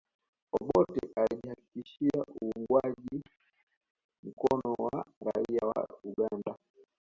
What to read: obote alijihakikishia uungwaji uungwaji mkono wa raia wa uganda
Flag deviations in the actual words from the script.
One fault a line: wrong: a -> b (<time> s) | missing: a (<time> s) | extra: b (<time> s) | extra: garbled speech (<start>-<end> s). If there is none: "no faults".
missing: uungwaji (3.2 s)